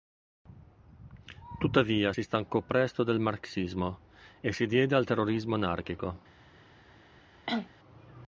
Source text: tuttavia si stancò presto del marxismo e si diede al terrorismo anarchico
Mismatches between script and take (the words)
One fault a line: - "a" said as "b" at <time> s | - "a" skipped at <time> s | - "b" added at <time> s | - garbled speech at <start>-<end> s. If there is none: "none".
none